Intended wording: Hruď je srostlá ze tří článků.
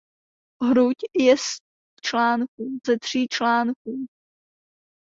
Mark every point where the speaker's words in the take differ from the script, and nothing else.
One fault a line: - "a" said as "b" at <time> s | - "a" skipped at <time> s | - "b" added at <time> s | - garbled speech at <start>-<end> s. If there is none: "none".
- "srostlá" said as "článků" at 2.0 s